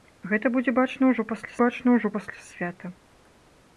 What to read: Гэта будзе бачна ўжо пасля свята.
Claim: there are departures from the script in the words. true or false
true